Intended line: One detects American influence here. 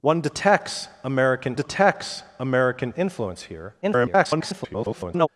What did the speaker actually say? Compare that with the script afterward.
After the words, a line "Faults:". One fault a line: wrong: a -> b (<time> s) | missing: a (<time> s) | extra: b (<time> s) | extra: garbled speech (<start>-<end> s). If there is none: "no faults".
One detects American detects American influence here. [garbled]
Faults:
extra: detects American (1.5 s)
extra: garbled speech (3.8-5.3 s)